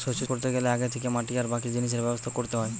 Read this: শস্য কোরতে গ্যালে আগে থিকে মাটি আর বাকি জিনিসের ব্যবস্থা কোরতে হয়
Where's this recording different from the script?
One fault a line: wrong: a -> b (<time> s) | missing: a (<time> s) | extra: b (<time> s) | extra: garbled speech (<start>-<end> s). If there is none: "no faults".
no faults